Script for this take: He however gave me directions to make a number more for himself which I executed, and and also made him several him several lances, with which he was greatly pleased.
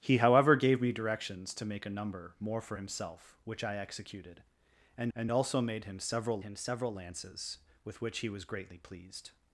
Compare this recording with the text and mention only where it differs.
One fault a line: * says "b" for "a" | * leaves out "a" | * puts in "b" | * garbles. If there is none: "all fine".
all fine